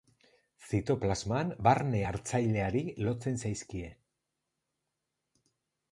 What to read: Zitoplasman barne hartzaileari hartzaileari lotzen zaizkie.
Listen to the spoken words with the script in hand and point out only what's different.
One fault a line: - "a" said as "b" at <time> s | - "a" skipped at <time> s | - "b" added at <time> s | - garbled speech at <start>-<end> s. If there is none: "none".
- "hartzaileari" skipped at 2.8 s